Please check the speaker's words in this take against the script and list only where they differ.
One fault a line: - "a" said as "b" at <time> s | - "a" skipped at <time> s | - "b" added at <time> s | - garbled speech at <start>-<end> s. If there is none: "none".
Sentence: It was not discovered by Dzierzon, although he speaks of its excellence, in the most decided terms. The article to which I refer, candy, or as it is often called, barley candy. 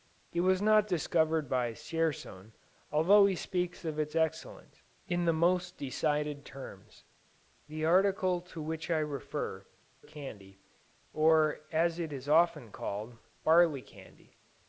none